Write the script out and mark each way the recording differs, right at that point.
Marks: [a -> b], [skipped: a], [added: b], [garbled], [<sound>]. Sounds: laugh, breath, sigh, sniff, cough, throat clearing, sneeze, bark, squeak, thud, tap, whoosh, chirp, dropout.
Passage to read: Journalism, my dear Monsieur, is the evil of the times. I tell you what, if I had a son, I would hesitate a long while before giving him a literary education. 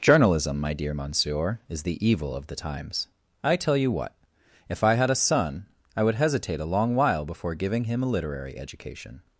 Journalism, my dear Monsieur, is the evil of the times. I tell you what, if I had a son, I would hesitate a long while before giving him a literary education.